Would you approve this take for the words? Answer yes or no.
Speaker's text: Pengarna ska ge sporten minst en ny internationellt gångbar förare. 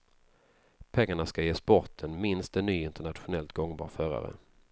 yes